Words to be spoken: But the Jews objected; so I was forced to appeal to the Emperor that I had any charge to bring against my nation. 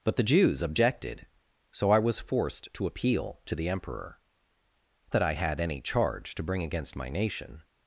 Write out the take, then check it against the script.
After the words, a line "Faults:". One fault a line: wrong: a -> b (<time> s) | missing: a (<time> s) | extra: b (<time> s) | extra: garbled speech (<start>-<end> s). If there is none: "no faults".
But the Jews objected; so I was forced to appeal to the Emperor that I had any charge to bring against my nation.
Faults:
no faults